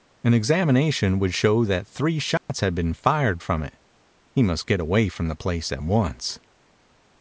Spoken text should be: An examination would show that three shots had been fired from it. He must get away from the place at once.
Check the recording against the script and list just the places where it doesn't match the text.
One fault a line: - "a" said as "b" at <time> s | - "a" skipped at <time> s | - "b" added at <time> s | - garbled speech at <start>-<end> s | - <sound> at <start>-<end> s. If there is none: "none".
- dropout at 2.4-2.5 s